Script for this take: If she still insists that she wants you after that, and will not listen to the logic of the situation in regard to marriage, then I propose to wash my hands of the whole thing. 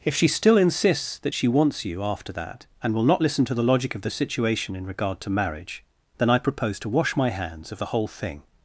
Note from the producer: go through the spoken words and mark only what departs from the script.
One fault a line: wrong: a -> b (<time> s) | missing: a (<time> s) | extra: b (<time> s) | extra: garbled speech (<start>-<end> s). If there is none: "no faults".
no faults